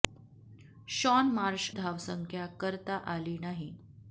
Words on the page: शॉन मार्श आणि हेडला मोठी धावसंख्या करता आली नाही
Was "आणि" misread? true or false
true